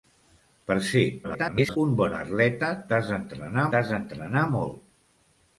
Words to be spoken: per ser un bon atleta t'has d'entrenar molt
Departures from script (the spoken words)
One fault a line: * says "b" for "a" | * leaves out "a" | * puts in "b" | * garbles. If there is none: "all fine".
* garbles
* puts in "t'has d'entrenar"